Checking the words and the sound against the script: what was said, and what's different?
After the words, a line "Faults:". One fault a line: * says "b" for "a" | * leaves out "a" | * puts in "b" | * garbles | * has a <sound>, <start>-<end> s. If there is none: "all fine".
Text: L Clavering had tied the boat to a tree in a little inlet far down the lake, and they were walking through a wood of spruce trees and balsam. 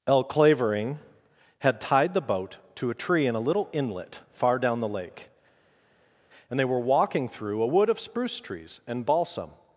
L Clavering had tied the boat to a tree in a little inlet far down the lake, and they were walking through a wood of spruce trees and balsam.
Faults:
all fine